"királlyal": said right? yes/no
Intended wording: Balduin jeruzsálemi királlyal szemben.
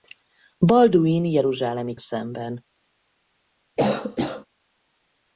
no